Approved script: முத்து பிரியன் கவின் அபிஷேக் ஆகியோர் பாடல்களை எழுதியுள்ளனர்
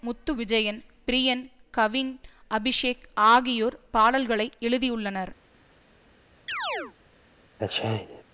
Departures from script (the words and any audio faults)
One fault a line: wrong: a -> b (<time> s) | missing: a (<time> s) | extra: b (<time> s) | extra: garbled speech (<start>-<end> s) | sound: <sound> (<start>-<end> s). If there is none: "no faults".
extra: விஜயன் (0.3 s)
sound: chirp (6.5-6.9 s)
sound: sneeze (7.6-8.2 s)